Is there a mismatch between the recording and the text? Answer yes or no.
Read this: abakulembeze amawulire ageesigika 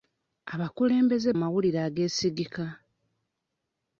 no